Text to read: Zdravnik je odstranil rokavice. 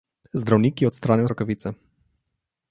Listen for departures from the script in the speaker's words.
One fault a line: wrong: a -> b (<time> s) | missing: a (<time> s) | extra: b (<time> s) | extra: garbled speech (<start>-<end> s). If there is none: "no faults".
no faults